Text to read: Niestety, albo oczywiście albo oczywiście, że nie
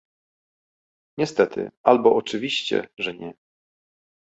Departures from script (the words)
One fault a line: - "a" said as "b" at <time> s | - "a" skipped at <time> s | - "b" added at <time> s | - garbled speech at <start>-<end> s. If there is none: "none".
- "albo oczywiście" skipped at 2.9 s